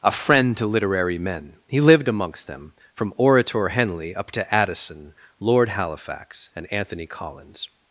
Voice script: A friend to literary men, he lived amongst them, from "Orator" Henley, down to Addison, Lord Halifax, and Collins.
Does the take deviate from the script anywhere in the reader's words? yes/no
yes